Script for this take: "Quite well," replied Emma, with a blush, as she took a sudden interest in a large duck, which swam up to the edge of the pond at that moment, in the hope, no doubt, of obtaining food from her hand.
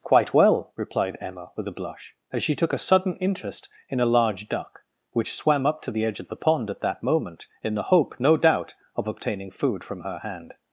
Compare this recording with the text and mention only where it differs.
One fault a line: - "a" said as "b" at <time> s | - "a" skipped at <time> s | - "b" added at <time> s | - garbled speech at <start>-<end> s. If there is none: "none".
none